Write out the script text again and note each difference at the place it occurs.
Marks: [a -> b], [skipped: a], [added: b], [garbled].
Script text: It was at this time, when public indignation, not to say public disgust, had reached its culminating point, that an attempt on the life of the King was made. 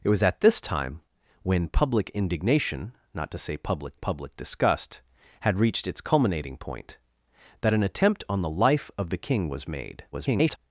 It was at this time, when public indignation, not to say public [added: public] disgust, had reached its culminating point, that an attempt on the life of the King was made. [garbled]